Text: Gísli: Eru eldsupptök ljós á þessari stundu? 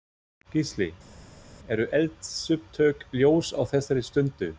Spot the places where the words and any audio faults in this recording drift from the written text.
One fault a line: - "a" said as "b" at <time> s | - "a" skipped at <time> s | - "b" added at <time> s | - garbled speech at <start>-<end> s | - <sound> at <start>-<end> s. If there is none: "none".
none